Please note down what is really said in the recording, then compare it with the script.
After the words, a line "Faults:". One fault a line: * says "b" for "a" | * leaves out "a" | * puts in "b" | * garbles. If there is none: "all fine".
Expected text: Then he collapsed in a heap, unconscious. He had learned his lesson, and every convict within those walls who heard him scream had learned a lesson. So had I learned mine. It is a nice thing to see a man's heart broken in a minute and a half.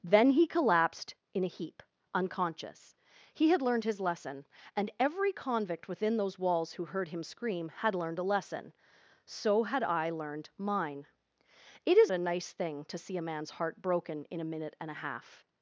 Then he collapsed in a heap, unconscious. He had learned his lesson, and every convict within those walls who heard him scream had learned a lesson. So had I learned mine. It is a nice thing to see a man's heart broken in a minute and a half.
Faults:
all fine